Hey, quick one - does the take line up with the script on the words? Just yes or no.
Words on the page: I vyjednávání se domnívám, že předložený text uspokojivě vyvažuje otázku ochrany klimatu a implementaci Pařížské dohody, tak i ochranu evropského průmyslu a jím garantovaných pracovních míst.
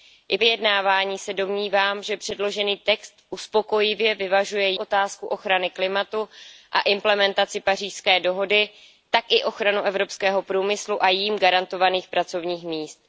yes